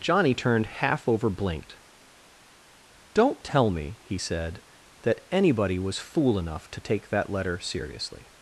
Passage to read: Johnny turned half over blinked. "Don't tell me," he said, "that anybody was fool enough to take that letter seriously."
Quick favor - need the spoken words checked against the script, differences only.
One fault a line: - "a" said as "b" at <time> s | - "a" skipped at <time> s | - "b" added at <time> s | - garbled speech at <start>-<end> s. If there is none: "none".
none